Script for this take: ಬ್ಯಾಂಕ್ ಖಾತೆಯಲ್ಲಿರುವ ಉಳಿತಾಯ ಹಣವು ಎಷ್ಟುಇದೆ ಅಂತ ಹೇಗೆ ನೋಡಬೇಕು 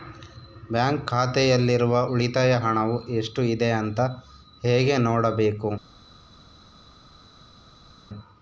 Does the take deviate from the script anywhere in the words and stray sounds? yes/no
no